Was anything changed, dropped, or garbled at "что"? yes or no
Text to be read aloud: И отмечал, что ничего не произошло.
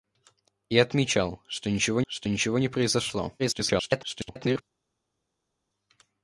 no